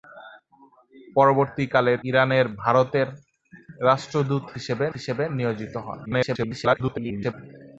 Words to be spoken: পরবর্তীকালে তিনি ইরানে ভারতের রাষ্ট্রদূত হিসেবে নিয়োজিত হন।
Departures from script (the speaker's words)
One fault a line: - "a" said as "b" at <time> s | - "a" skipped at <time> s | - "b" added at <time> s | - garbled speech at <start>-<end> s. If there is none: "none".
- "তিনি" skipped at 1.9 s
- "হিসেবে" added at 4.9 s
- garbled speech at 6.1-7.3 s